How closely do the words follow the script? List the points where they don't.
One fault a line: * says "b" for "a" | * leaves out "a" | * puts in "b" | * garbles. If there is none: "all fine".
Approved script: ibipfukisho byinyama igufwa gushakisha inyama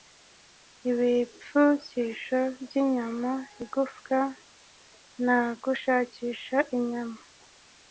* puts in "na"